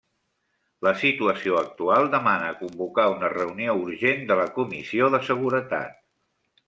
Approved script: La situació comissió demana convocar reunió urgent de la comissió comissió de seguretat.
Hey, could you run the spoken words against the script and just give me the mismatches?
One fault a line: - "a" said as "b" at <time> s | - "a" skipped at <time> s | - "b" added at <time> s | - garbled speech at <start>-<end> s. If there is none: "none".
- "comissió" said as "actual" at 1.6 s
- "una" added at 3.2 s
- "comissió" skipped at 5.1 s